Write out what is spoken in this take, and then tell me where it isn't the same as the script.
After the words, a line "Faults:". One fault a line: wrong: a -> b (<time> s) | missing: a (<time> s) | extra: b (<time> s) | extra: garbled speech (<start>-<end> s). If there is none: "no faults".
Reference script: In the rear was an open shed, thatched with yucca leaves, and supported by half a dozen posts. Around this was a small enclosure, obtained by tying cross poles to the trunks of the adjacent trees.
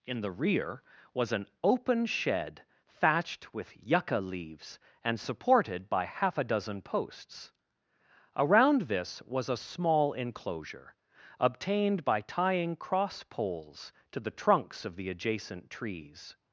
In the rear was an open shed, thatched with yucca leaves, and supported by half a dozen posts. Around this was a small enclosure, obtained by tying cross poles to the trunks of the adjacent trees.
Faults:
no faults